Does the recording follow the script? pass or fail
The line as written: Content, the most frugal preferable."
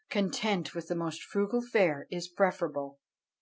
fail